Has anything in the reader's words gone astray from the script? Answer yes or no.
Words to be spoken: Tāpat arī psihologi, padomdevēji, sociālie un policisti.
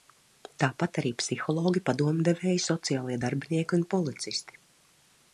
yes